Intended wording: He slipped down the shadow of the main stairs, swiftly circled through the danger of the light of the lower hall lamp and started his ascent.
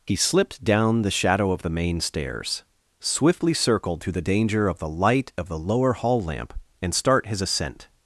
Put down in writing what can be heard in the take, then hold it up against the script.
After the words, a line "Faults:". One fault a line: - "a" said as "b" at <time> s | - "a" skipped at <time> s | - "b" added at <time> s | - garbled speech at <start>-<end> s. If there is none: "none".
He slipped down the shadow of the main stairs, swiftly circled through the danger of the light of the lower hall lamp and start his ascent.
Faults:
- "started" said as "start" at 6.9 s